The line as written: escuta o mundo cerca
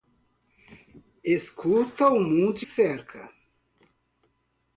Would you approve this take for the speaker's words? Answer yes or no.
yes